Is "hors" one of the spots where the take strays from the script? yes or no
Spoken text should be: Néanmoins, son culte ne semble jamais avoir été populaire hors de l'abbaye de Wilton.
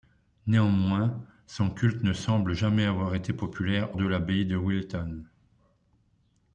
yes